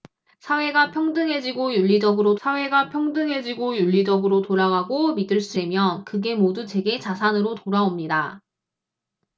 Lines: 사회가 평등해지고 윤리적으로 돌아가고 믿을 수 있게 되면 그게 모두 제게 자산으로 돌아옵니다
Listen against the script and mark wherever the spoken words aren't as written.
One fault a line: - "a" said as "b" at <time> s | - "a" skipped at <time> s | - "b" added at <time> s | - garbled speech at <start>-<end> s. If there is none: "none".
- "사회가 평등해지고 윤리적으로" added at 2.5 s
- "있게" skipped at 5.6 s